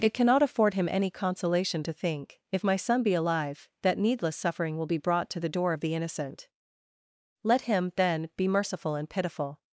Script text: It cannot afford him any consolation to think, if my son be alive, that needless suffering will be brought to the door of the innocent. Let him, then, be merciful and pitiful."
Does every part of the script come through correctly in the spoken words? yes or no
yes